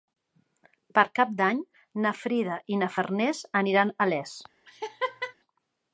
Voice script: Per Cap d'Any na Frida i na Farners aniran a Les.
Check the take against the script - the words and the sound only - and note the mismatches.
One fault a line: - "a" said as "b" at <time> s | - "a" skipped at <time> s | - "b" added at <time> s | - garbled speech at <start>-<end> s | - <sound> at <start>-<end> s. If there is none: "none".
- laugh at 4.7-5.3 s